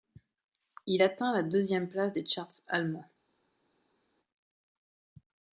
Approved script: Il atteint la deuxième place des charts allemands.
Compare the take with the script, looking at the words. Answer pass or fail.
pass